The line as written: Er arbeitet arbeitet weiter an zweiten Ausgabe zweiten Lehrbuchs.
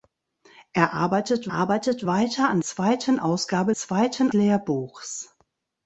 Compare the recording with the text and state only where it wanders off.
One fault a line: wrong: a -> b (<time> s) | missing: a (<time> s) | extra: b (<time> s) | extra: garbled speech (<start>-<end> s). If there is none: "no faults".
no faults